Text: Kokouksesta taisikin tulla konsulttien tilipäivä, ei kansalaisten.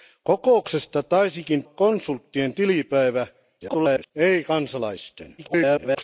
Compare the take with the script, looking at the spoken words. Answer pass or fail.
fail